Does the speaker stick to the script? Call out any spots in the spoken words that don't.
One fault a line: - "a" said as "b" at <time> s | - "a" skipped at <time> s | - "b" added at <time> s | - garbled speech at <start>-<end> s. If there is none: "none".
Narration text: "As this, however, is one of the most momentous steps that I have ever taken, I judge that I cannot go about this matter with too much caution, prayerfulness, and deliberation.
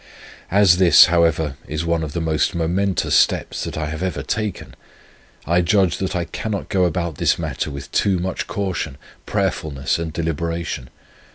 none